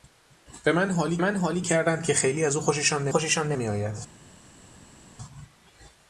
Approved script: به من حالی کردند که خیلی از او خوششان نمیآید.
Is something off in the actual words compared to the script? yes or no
yes